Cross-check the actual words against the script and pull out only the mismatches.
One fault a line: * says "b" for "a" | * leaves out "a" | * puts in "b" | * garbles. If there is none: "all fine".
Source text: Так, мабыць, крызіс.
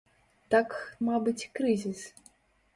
all fine